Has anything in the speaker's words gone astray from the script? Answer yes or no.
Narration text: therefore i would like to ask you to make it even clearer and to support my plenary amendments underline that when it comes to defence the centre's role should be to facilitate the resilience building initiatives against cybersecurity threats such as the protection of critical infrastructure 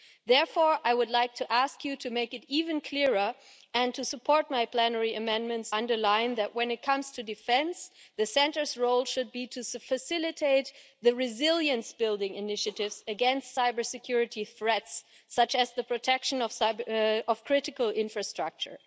no